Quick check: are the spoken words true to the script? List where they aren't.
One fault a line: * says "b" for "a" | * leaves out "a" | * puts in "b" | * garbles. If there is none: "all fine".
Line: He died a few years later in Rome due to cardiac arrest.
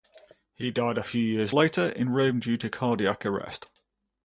all fine